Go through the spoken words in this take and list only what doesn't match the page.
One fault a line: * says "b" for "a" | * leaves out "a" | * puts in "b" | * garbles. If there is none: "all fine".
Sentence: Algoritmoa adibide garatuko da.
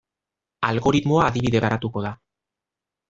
all fine